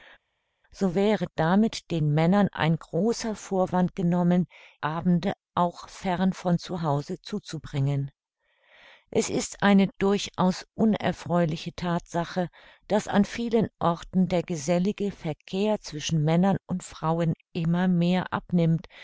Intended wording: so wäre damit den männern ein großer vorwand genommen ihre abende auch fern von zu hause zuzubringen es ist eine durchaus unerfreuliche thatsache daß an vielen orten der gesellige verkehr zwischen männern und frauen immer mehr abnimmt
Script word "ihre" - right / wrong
wrong